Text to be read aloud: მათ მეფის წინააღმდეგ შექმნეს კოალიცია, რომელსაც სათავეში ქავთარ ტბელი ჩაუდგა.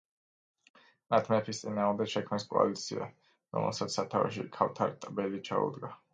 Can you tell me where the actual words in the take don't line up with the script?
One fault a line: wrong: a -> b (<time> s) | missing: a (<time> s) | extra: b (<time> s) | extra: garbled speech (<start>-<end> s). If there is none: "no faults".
no faults